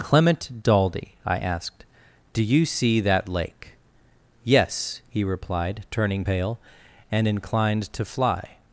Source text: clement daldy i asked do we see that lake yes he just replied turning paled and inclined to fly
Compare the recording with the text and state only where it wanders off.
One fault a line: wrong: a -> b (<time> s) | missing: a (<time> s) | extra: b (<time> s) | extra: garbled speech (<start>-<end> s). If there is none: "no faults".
wrong: we -> you (2.4 s)
missing: just (5.2 s)
wrong: paled -> pale (6.2 s)